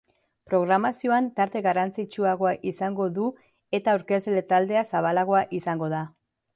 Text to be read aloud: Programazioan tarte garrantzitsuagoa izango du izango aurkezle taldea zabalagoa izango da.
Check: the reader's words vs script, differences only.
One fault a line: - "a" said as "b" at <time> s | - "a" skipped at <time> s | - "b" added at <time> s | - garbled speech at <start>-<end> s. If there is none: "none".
- "izango" said as "eta" at 3.8 s